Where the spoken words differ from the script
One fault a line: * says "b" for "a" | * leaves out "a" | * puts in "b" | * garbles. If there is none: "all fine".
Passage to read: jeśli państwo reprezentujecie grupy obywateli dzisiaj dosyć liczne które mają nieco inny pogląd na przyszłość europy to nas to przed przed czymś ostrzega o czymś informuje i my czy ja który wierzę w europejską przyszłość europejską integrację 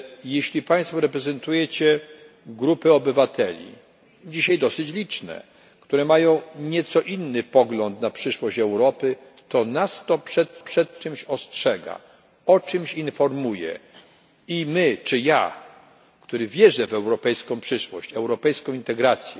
all fine